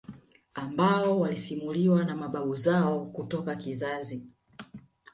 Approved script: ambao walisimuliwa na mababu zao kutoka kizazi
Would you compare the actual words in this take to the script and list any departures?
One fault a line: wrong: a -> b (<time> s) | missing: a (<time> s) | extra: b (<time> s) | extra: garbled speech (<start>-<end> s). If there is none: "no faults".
no faults